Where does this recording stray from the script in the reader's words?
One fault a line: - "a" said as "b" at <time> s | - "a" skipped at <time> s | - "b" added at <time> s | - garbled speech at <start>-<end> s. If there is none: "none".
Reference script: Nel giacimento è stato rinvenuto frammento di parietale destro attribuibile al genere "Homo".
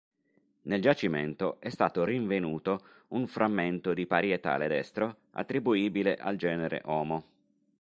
- "un" added at 3.1 s